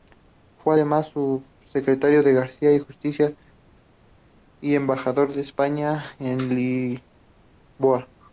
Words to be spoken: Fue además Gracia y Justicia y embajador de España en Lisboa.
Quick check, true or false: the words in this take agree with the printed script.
false